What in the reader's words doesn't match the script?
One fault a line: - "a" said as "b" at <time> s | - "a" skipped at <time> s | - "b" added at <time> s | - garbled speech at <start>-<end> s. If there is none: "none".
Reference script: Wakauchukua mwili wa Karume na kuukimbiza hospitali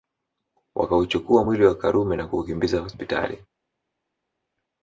none